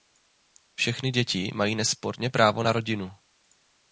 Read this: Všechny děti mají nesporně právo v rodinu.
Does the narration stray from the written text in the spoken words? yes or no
yes